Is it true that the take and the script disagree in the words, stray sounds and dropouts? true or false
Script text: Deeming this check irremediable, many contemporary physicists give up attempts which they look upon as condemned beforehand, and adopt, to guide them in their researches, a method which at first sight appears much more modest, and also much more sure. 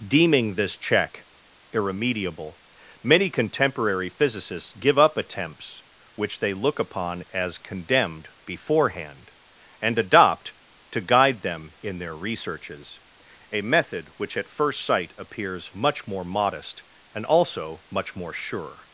false